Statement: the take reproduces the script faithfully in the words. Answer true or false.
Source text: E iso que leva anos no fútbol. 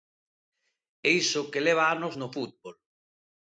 true